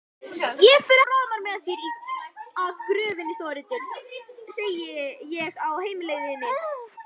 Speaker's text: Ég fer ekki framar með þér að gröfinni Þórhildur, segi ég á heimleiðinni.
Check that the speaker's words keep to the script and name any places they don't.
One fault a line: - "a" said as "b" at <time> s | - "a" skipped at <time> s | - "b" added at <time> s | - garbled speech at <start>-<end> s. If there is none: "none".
- "ekki" skipped at 1.0 s